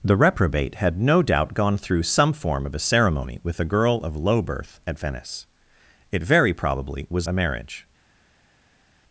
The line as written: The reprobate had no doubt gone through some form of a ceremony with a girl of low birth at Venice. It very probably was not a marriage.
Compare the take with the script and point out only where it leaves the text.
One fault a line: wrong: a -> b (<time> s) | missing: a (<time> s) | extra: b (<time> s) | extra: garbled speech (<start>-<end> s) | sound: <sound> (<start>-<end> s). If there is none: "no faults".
missing: not (7.3 s)